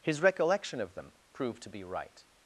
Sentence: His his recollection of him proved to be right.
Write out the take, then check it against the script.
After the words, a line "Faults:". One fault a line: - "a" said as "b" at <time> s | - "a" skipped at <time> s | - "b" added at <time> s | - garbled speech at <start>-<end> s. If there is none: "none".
His recollection of them proved to be right.
Faults:
- "his" skipped at 0.2 s
- "him" said as "them" at 0.9 s